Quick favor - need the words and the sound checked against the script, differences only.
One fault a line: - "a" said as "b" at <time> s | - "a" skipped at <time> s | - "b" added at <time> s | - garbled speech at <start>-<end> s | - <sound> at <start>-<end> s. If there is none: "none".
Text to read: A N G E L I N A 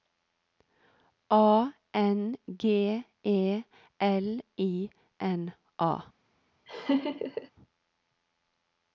- laugh at 6.7-7.5 s